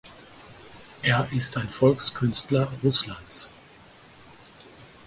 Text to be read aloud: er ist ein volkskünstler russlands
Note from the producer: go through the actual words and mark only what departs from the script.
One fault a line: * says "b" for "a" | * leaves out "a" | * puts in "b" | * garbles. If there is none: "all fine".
all fine